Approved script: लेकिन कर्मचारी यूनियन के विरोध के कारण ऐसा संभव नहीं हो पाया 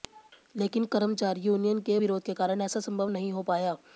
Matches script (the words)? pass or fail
pass